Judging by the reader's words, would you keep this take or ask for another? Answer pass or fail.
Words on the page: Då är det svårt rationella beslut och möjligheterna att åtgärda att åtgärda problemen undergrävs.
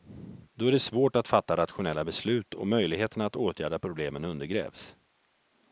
fail